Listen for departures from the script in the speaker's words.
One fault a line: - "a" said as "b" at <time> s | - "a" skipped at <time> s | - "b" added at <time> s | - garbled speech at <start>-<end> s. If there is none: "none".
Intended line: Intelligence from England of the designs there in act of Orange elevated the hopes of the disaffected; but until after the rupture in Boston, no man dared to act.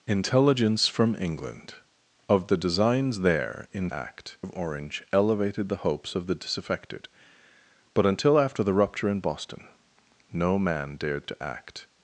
none